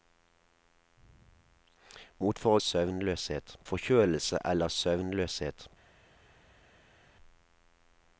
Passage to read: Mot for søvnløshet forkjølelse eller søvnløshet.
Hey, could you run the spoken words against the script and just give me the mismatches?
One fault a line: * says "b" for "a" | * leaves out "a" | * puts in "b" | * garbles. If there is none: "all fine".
all fine